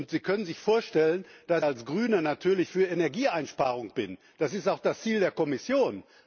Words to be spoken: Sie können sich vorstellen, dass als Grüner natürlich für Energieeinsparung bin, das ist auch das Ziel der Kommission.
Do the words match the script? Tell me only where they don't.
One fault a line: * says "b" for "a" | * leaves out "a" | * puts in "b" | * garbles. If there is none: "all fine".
all fine